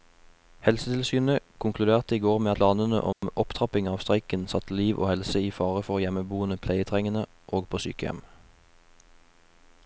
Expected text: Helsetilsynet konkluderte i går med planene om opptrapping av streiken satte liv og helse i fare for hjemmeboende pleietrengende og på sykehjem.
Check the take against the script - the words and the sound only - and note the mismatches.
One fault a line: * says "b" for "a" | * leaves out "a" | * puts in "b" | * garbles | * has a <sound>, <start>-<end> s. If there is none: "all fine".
* has a dropout, 3.1-3.2 s